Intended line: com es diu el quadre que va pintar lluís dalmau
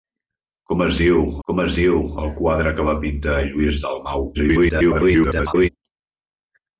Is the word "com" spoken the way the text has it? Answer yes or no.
yes